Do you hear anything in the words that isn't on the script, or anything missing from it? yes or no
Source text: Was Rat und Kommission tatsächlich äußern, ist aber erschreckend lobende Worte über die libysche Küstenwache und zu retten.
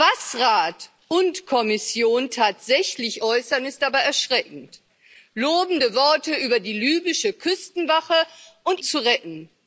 no